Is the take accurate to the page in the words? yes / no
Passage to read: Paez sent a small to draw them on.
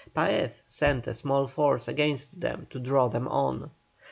no